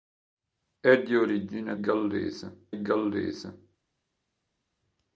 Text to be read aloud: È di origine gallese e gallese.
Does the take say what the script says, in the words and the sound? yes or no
yes